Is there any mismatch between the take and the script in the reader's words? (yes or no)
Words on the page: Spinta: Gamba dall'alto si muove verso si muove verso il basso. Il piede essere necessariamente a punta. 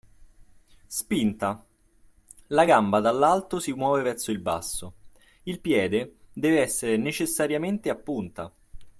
yes